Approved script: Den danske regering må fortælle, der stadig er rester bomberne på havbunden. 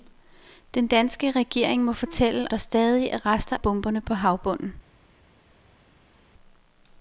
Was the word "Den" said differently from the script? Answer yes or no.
no